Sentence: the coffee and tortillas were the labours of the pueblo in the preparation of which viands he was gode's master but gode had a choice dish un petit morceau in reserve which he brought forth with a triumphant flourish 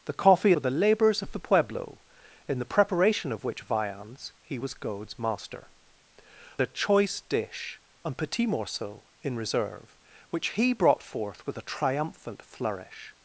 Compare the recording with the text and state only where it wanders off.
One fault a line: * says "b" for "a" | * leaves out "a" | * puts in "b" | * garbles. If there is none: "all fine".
* leaves out "and tortillas"
* leaves out "but gode had"